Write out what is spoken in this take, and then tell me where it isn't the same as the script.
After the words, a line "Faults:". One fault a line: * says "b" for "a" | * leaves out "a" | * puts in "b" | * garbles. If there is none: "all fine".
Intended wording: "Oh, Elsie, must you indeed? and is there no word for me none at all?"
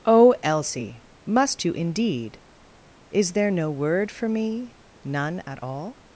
"Oh, Elsie, must you indeed? is there no word for me none at all?"
Faults:
* leaves out "and"